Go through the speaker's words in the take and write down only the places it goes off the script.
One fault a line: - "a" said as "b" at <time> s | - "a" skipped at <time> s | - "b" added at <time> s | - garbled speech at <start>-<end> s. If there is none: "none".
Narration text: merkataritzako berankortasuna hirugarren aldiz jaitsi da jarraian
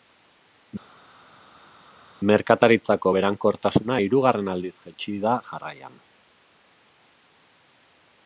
none